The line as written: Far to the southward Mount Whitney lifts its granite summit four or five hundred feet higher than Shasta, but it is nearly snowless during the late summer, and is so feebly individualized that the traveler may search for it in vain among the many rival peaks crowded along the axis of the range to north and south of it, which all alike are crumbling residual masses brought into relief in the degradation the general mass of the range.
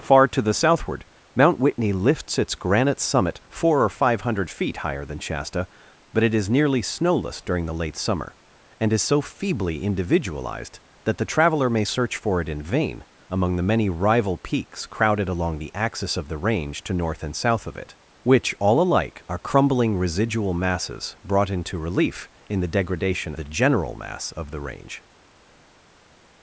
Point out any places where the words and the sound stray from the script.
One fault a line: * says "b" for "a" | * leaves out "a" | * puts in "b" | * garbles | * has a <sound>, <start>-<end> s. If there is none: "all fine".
all fine